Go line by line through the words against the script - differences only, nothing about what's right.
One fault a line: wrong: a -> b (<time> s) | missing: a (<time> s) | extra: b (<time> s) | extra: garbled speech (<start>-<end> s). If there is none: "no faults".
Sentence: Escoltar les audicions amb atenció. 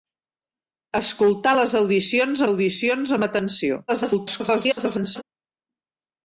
extra: audicions (2.5 s)
extra: garbled speech (3.9-5.2 s)